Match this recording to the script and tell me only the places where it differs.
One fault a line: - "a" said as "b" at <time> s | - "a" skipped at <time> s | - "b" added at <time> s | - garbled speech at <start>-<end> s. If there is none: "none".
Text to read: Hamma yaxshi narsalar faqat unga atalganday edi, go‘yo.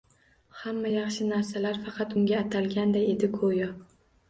none